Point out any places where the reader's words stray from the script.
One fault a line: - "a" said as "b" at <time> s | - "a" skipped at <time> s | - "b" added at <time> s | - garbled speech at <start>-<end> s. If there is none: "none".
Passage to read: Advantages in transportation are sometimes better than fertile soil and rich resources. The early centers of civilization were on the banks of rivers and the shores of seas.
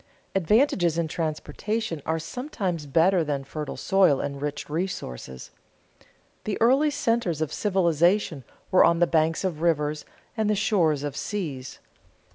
none